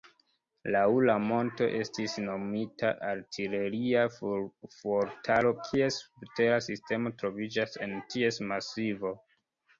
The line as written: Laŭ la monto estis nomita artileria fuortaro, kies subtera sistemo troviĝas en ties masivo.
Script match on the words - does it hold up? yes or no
yes